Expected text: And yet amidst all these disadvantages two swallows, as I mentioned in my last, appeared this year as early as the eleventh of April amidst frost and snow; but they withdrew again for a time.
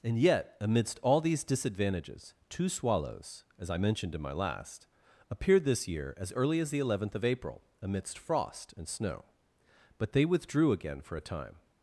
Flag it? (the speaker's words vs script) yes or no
no